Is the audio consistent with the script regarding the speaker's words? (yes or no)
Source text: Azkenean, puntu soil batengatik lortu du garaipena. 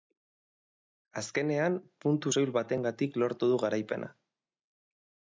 yes